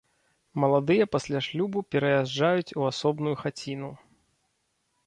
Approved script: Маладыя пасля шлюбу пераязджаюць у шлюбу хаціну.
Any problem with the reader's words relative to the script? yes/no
yes